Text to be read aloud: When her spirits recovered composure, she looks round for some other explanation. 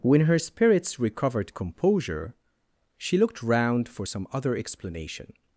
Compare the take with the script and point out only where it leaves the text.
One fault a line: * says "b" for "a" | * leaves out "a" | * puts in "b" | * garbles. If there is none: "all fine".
* says "looked" for "looks"